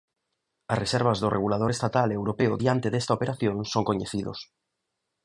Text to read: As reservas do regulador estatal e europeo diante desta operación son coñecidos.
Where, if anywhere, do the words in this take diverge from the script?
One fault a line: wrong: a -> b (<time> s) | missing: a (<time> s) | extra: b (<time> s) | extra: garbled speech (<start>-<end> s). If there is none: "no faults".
no faults